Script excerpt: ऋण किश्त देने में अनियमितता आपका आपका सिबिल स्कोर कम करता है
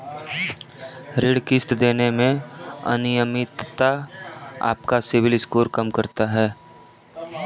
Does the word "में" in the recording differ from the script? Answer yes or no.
no